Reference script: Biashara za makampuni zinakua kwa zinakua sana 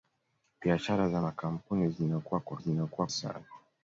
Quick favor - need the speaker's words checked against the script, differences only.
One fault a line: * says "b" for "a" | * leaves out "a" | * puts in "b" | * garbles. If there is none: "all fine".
all fine